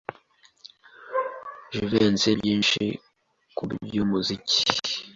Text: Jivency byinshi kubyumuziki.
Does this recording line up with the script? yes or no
yes